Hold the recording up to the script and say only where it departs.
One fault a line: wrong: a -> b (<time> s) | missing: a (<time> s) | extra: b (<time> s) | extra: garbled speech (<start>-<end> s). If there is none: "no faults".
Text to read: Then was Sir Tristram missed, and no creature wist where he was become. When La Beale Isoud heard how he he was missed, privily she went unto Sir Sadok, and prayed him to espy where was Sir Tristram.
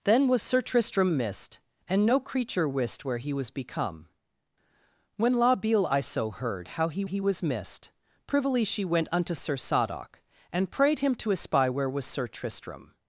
no faults